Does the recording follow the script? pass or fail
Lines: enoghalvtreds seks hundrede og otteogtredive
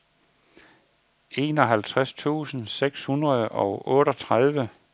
fail